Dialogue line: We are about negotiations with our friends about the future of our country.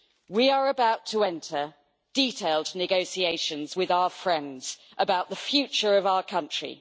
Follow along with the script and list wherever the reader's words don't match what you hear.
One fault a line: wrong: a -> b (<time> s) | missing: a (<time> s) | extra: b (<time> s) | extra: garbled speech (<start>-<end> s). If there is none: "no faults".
extra: to enter detailed (1.1 s)